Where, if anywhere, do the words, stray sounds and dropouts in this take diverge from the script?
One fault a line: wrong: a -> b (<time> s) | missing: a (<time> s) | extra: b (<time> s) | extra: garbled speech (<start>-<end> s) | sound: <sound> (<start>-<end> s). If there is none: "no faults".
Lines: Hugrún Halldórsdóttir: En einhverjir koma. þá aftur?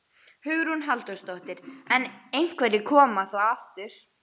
no faults